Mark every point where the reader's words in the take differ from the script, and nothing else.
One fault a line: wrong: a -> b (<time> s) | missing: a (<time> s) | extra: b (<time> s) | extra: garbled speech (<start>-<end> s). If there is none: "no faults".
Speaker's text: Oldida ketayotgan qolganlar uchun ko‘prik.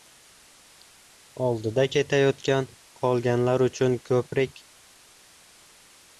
no faults